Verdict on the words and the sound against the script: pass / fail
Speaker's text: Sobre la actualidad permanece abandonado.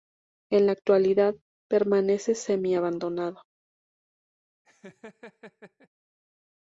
fail